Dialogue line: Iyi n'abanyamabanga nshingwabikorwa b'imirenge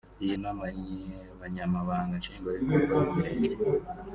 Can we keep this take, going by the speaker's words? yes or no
yes